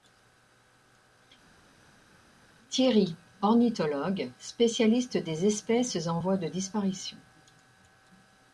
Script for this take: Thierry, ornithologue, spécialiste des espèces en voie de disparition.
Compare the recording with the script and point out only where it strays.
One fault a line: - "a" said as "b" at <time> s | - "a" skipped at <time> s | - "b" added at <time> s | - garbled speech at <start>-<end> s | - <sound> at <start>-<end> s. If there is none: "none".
none